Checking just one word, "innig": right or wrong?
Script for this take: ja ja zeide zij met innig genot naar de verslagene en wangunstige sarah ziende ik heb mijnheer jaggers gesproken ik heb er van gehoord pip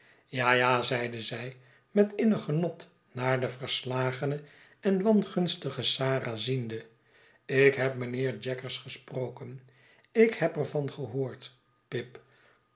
right